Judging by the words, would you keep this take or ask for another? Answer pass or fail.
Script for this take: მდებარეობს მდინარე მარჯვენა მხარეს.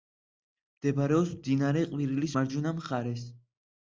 fail